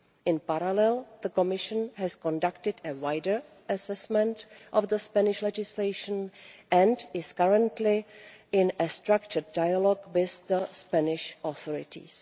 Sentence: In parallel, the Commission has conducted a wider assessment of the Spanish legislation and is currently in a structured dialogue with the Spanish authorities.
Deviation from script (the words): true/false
false